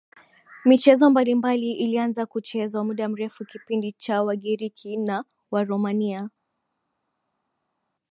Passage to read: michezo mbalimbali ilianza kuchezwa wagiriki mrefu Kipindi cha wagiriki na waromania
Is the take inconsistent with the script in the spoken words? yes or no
yes